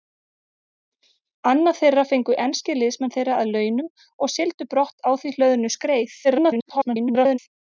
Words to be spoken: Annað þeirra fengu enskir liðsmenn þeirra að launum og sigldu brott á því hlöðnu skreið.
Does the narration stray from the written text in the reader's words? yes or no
yes